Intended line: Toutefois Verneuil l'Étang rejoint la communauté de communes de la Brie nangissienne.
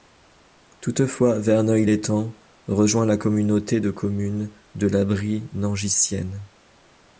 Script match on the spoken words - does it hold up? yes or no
yes